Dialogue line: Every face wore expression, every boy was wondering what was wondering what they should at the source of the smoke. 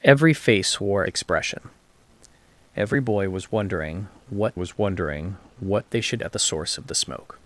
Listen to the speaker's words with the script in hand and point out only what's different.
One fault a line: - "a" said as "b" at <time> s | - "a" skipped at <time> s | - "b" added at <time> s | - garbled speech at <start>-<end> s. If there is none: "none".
none